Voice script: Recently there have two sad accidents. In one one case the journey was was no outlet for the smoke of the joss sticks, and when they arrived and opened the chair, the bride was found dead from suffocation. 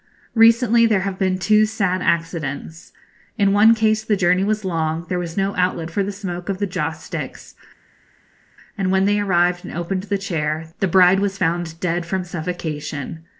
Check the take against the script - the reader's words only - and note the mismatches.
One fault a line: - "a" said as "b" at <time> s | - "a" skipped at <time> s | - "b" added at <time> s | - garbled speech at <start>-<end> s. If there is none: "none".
- "been" added at 1.2 s
- "one" skipped at 3.8 s
- "long there" added at 4.7 s